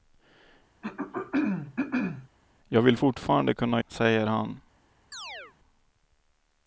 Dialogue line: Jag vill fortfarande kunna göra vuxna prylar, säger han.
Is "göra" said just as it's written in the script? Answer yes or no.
no